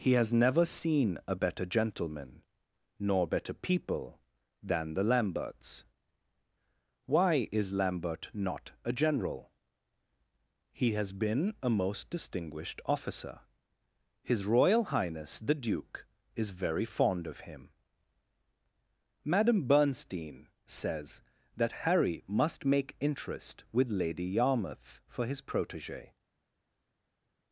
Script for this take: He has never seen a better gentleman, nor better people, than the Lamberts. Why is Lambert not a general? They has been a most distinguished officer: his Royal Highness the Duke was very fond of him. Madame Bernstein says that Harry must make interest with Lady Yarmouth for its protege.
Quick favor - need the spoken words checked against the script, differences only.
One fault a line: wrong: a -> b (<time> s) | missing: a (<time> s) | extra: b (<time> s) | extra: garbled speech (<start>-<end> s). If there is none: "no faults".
wrong: They -> He (10.7 s)
wrong: was -> is (16.4 s)
wrong: its -> his (25.3 s)